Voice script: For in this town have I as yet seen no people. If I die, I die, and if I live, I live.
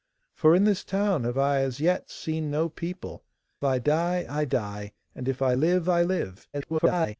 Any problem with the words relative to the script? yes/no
yes